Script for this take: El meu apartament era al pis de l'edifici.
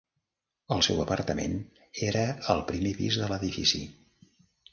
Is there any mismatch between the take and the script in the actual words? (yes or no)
yes